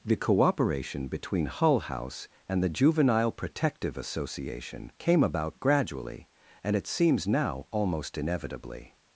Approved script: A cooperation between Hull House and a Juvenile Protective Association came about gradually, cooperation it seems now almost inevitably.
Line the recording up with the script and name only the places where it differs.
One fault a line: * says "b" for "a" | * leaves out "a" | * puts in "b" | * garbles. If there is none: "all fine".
* says "The" for "A"
* says "the" for "a"
* says "and" for "cooperation"